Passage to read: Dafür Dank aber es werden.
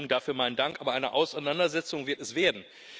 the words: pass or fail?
fail